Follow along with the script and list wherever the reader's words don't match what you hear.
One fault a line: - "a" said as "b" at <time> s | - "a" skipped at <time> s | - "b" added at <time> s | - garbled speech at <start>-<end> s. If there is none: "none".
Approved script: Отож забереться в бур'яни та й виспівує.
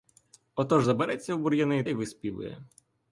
- "та" skipped at 1.8 s